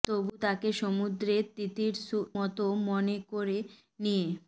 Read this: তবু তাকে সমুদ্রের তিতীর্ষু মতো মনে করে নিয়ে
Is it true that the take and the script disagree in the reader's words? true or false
false